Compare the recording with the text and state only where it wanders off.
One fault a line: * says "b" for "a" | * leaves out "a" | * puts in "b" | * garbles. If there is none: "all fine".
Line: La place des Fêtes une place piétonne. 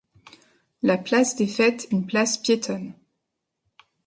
all fine